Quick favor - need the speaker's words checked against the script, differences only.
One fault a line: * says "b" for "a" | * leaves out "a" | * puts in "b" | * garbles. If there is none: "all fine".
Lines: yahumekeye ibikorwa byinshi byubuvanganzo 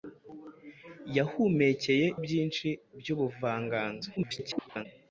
* leaves out "ibikorwa"
* garbles